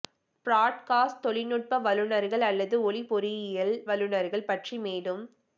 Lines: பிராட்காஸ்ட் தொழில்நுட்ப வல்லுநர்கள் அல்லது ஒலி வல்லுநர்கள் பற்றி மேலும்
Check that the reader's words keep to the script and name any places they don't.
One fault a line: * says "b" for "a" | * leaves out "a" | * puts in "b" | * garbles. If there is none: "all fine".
* puts in "பொறியியல்"